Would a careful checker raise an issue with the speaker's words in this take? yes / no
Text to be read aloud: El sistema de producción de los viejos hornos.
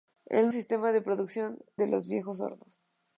no